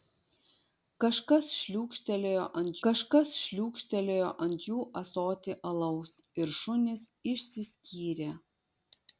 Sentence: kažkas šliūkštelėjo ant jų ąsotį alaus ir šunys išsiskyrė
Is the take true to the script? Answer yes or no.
no